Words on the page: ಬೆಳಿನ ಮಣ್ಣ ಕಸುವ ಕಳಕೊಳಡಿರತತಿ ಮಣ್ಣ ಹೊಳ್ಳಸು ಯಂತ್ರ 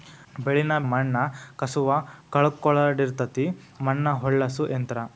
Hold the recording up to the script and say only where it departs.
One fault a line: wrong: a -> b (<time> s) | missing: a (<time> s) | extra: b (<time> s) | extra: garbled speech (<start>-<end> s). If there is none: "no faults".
no faults